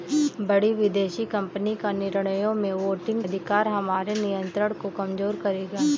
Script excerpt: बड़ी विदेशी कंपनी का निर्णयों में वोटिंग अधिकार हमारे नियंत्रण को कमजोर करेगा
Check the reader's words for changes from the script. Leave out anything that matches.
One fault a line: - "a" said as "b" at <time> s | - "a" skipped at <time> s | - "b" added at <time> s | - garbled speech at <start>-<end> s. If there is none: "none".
none